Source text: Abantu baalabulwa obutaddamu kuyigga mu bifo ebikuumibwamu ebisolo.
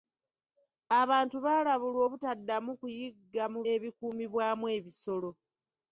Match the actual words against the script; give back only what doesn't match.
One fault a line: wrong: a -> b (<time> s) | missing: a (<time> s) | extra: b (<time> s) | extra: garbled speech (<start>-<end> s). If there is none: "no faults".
missing: bifo (3.6 s)